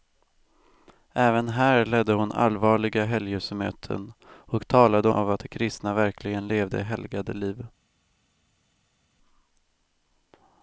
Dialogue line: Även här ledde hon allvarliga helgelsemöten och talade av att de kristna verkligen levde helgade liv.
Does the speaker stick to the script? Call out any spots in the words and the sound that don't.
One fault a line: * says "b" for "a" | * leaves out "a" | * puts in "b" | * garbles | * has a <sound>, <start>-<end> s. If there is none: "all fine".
all fine